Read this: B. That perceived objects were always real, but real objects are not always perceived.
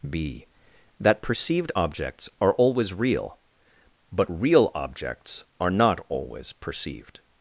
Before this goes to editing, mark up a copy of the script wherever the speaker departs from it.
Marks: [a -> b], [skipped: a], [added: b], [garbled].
B. That perceived objects [were -> are] always real, but real objects are not always perceived.